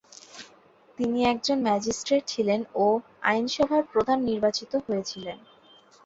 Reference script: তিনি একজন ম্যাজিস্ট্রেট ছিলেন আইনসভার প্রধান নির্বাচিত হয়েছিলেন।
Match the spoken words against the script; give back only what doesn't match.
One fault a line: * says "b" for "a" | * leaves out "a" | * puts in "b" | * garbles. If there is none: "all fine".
* puts in "ও"